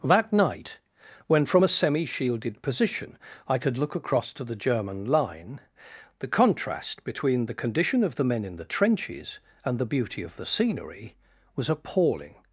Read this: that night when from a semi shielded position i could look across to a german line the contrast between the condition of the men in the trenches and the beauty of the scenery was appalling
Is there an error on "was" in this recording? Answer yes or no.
no